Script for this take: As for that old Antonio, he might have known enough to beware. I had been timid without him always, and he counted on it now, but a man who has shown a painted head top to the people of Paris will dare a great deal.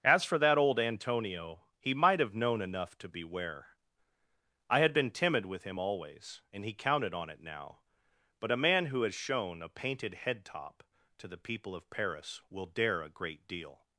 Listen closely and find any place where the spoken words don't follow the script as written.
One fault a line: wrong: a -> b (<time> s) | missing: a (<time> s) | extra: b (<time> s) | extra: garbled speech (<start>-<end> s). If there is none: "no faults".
wrong: without -> with (5.5 s)